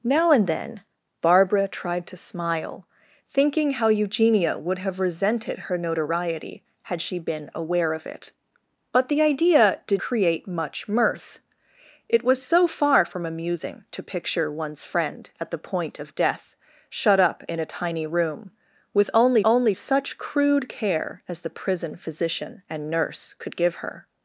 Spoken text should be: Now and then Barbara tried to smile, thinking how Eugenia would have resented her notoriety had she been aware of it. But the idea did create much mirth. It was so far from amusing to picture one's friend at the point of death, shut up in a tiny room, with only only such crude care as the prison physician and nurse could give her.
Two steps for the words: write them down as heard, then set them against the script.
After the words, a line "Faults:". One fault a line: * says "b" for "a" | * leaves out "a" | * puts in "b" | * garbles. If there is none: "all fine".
Now and then Barbara tried to smile, thinking how Eugenia would have resented her notoriety had she been aware of it. But the idea did create much mirth. It was so far from amusing to picture one's friend at the point of death, shut up in a tiny room, with only only such crude care as the prison physician and nurse could give her.
Faults:
all fine